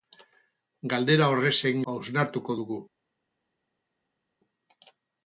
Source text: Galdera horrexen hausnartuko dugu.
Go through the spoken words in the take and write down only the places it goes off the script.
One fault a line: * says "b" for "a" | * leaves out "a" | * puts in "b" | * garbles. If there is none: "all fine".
all fine